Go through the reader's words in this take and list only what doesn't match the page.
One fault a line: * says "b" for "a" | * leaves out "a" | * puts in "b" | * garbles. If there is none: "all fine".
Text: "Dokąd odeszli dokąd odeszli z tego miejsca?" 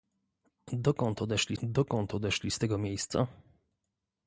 all fine